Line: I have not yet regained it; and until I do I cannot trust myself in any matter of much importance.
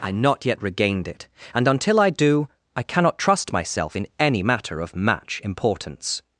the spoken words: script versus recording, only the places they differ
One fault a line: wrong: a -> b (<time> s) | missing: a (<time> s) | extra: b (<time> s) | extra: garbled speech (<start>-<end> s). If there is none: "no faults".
missing: have (0.1 s)
wrong: much -> match (4.9 s)